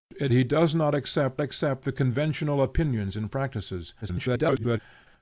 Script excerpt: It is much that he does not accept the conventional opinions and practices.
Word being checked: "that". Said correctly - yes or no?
no